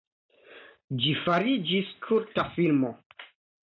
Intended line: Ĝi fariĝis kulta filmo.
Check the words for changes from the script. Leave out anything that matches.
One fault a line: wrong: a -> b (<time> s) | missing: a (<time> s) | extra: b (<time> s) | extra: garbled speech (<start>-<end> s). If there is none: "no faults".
no faults